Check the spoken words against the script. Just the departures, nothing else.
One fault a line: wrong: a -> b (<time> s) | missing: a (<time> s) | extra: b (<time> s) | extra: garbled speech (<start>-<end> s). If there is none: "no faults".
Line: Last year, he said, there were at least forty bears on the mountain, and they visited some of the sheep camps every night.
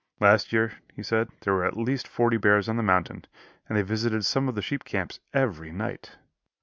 no faults